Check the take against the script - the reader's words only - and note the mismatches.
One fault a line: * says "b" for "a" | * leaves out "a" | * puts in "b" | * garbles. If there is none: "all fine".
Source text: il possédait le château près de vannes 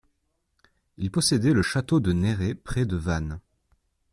* puts in "de néret"